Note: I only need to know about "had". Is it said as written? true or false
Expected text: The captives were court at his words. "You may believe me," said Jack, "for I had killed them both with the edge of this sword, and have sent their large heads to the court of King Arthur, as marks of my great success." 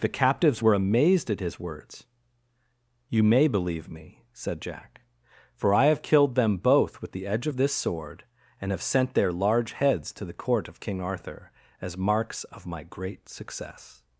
false